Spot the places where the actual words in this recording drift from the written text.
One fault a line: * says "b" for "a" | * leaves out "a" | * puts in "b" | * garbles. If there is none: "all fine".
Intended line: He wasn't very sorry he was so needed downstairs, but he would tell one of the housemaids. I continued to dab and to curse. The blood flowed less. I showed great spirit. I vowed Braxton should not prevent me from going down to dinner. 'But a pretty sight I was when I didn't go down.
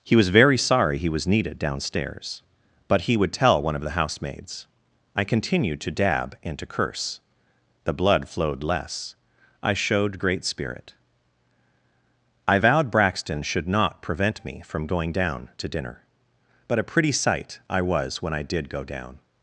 * says "was" for "wasn't"
* leaves out "so"
* says "did" for "didn't"